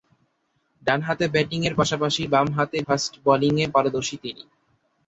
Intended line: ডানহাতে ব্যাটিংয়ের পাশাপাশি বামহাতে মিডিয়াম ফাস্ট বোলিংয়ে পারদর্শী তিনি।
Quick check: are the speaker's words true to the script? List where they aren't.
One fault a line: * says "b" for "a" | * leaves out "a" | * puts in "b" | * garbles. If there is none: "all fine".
* leaves out "মিডিয়াম"